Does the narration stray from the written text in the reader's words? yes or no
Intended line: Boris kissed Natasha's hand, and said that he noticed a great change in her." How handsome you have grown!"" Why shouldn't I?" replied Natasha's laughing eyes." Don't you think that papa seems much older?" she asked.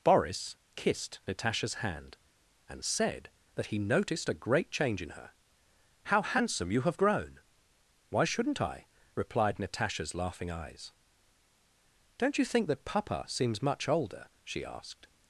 no